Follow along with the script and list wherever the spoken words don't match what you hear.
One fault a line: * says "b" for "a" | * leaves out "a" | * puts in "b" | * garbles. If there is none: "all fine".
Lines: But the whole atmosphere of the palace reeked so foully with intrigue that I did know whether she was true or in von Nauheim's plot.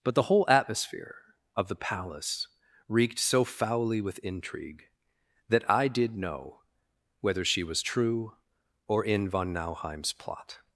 all fine